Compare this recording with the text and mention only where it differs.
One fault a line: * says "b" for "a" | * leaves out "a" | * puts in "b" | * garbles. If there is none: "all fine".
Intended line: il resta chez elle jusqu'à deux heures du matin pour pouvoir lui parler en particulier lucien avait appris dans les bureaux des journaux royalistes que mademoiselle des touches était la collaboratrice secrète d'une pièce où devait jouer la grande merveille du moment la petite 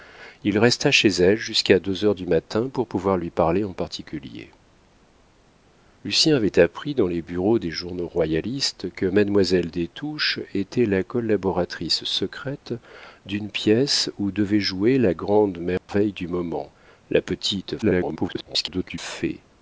* garbles